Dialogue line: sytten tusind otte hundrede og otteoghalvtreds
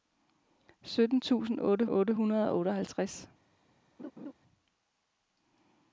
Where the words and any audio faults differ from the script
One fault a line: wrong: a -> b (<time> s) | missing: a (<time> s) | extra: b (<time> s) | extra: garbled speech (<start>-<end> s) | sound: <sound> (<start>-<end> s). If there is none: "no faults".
extra: otte (1.9 s)
sound: laugh (4.0-4.3 s)